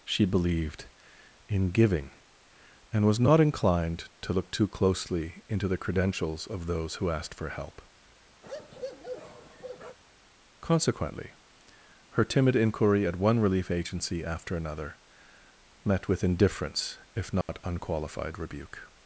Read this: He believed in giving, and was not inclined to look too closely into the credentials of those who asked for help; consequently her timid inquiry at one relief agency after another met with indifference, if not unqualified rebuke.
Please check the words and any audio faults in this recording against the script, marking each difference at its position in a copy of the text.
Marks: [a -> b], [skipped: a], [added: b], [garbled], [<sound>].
[He -> She] believed in giving, and was not inclined to look too closely into the credentials of those who asked for help; [bark] consequently her timid inquiry at one relief agency after another met with indifference, if not [dropout] unqualified rebuke.